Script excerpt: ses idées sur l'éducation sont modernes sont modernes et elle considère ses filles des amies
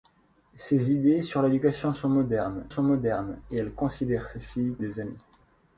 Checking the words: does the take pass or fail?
pass